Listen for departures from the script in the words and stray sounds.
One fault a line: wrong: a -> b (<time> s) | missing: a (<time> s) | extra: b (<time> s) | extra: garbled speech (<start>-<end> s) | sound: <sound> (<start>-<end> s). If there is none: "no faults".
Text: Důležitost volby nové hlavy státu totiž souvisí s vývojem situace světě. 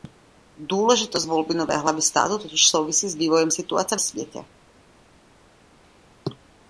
no faults